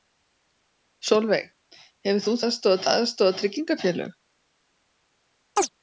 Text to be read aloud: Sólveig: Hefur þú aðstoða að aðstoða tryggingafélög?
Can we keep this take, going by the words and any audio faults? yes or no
no